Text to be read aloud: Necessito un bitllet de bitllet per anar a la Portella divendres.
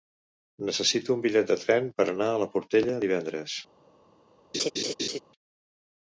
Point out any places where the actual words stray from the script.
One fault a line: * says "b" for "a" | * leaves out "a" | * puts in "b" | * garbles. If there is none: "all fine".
* says "tren" for "bitllet"